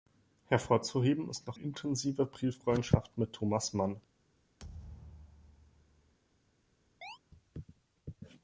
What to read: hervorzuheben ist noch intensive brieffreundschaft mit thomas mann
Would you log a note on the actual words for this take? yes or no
no